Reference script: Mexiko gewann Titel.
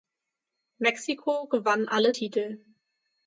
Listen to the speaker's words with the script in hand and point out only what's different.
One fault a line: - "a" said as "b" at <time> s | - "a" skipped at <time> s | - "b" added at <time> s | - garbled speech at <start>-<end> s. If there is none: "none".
- "alle" added at 1.9 s